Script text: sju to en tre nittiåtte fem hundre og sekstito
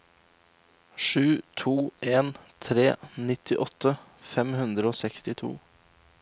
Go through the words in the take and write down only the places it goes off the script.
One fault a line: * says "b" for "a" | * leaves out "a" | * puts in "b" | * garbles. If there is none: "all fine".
all fine